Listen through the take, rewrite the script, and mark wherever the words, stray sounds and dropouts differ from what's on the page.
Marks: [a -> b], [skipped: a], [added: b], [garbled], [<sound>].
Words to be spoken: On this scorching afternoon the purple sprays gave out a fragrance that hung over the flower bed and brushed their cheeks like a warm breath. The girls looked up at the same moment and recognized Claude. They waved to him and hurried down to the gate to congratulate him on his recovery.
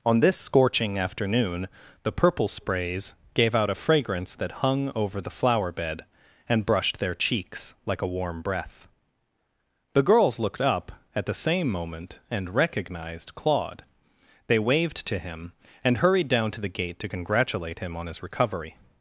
On this scorching afternoon the purple sprays gave out a fragrance that hung over the flower bed and brushed their cheeks like a warm breath. The girls looked up at the same moment and recognized Claude. They waved to him and hurried down to the gate to congratulate him on his recovery.